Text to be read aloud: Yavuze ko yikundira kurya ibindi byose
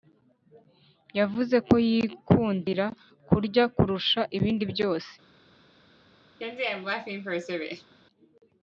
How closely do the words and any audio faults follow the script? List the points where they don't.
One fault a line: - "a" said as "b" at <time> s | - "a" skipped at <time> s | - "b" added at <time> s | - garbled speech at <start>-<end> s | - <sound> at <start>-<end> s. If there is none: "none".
- "kurusha" added at 3.8 s
- laugh at 6.4-7.9 s